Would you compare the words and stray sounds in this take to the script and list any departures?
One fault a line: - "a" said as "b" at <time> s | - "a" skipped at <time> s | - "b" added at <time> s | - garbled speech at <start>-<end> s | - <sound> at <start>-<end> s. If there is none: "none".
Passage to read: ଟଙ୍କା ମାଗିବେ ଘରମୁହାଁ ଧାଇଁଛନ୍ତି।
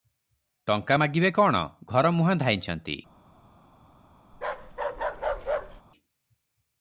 - "କଣ" added at 1.3 s
- bark at 4.3-5.8 s